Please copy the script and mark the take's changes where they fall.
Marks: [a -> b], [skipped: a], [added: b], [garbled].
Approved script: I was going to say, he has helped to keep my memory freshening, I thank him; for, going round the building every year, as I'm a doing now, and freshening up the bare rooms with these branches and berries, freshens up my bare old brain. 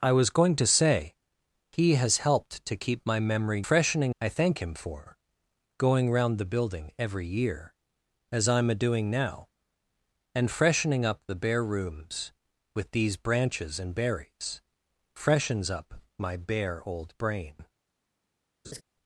I was going to say, he has helped to keep my memory freshening, I thank him; for, going round the building every year, as I'm a doing now, and freshening up the bare rooms with these branches and berries, freshens up my bare old brain.